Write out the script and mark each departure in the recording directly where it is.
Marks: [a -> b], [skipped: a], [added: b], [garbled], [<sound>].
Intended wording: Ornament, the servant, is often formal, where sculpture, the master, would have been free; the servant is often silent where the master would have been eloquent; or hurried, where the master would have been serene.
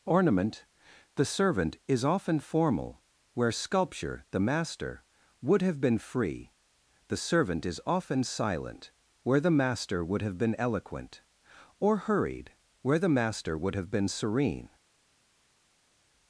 Ornament, the servant, is often formal, where sculpture, the master, would have been free; the servant is often silent where the master would have been eloquent; or hurried, where the master would have been serene.